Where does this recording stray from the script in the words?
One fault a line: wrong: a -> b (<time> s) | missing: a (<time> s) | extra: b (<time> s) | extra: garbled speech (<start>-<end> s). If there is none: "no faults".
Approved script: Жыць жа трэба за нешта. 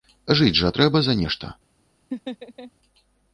no faults